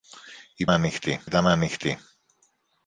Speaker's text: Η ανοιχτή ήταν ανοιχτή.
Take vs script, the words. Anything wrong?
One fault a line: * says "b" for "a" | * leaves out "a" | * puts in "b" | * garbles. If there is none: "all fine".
all fine